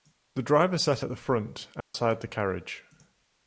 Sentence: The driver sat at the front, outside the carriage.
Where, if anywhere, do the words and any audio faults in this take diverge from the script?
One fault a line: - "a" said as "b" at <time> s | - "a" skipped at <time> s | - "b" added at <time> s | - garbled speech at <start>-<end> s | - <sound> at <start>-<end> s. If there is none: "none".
- dropout at 1.8-1.9 s